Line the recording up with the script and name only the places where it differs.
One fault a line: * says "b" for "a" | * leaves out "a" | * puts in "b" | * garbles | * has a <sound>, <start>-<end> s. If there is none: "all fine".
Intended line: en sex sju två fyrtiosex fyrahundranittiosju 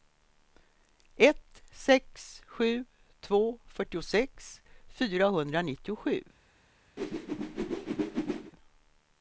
* says "ett" for "en"
* has a whoosh, 7.0-8.5 s